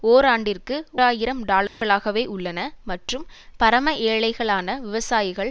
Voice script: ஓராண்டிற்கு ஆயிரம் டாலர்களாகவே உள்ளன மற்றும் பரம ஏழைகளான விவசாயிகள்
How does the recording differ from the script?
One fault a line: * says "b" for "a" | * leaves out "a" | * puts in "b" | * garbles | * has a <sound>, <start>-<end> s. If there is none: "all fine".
* has a dropout, 1.7-1.8 s